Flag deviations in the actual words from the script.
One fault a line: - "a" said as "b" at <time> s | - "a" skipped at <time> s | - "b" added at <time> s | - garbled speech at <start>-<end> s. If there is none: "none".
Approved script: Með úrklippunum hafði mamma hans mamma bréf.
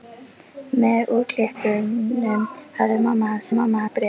none